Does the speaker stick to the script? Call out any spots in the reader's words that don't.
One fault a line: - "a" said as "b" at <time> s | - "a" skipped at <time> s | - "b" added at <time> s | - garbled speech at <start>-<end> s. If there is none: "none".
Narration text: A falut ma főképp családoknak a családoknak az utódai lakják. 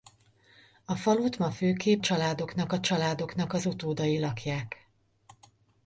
none